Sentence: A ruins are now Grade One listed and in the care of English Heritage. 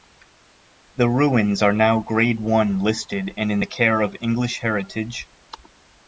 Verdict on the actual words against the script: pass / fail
fail